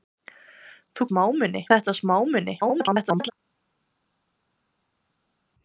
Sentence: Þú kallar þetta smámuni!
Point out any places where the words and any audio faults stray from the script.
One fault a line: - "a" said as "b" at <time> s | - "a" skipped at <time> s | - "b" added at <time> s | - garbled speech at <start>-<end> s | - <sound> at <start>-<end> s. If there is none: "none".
- "kallar" said as "smámuni" at 1.1 s
- garbled speech at 2.6-3.3 s